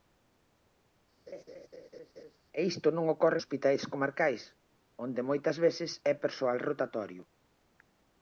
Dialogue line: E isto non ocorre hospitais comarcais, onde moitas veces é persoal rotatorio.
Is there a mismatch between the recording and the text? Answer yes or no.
no